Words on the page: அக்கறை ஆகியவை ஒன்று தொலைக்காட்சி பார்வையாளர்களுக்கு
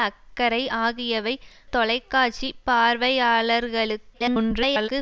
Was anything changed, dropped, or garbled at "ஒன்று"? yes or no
yes